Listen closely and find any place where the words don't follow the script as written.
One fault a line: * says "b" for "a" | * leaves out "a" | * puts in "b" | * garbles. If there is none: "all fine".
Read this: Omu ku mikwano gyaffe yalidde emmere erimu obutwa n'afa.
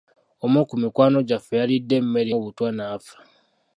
* leaves out "erimu"